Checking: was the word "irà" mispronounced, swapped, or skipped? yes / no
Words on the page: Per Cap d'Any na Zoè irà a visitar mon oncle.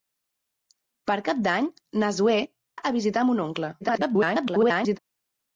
yes